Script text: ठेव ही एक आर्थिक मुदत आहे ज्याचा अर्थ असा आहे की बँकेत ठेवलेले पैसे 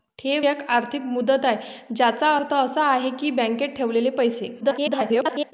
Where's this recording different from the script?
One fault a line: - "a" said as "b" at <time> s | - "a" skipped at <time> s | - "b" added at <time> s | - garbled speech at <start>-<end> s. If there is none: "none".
- "ही" skipped at 0.5 s
- garbled speech at 4.6-5.5 s